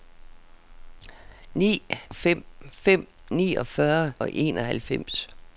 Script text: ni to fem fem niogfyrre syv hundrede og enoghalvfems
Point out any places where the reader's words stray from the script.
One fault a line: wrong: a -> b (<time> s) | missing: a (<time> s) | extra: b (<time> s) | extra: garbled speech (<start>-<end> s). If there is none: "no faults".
missing: to (1.8 s)
missing: syv hundrede (4.1 s)